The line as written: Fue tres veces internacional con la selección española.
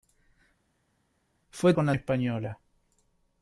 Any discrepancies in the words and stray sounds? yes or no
yes